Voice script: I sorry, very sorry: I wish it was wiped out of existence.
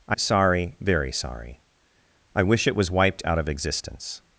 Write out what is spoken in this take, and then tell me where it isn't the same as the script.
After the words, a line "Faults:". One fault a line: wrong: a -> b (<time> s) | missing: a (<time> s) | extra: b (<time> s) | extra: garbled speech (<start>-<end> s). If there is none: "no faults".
I sorry, very sorry: I wish it was wiped out of existence.
Faults:
no faults